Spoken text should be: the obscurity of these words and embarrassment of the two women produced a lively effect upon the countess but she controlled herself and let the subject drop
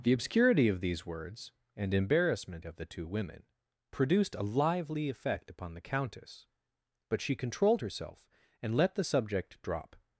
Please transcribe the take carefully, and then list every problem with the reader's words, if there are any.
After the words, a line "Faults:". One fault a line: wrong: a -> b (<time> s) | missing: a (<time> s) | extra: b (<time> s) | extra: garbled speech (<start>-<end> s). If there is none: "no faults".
the obscurity of these words and embarrassment of the two women produced a lively effect upon the countess but she controlled herself and let the subject drop
Faults:
no faults